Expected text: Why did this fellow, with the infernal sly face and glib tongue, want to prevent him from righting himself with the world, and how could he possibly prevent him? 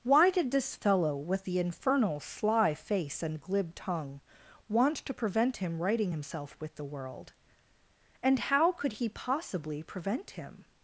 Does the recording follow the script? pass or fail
fail